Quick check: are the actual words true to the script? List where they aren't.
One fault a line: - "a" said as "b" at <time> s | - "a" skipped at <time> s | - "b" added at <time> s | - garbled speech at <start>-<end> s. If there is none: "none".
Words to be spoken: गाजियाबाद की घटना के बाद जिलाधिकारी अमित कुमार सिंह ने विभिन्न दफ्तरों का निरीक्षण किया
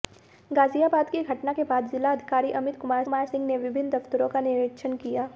- "कुमार" added at 3.0 s